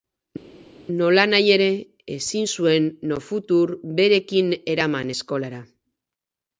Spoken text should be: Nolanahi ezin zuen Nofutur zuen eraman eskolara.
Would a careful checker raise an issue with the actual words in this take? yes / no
yes